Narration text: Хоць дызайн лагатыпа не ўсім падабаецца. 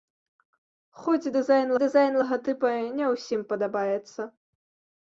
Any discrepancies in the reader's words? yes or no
yes